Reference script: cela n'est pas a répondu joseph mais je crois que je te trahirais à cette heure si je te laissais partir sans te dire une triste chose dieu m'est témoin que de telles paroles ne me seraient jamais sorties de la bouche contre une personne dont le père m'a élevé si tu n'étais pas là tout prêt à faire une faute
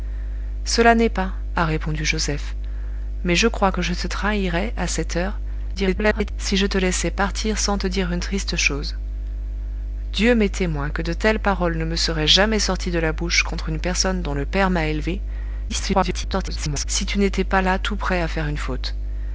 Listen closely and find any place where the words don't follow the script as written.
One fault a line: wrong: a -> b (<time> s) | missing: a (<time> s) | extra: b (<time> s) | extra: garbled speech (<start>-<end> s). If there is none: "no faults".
extra: garbled speech (5.7-6.3 s)
extra: garbled speech (15.7-16.8 s)